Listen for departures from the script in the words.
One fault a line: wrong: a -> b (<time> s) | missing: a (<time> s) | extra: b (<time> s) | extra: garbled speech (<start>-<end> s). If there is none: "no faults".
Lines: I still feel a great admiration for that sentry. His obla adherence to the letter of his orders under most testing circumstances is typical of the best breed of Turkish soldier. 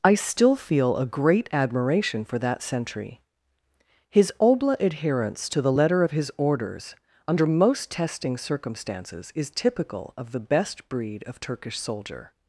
no faults